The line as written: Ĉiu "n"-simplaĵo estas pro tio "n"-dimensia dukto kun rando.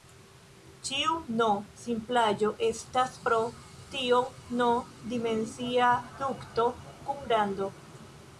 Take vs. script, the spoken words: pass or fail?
pass